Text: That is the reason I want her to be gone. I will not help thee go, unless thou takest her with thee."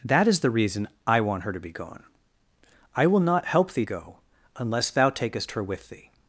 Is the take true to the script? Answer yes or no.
yes